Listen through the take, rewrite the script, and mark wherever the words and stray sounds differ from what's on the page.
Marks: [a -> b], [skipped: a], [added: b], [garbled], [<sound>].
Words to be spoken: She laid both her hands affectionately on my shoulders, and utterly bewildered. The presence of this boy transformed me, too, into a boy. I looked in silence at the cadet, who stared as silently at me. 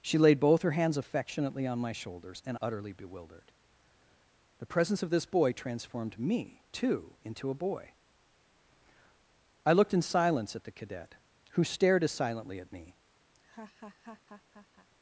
She laid both her hands affectionately on my shoulders, and utterly bewildered. The presence of this boy transformed me, too, into a boy. I looked in silence at the cadet, who stared as silently at me. [laugh]